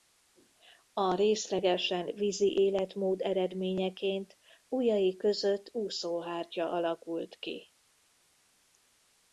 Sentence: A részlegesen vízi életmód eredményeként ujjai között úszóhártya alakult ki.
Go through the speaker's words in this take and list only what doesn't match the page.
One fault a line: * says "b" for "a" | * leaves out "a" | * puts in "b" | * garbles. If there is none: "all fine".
all fine